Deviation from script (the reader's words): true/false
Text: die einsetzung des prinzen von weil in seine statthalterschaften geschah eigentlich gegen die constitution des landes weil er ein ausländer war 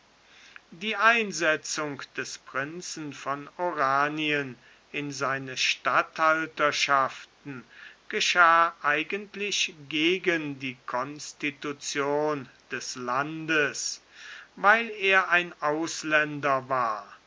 true